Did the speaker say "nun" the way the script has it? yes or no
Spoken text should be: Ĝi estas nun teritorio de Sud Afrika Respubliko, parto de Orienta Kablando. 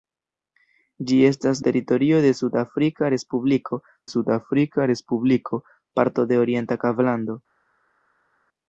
no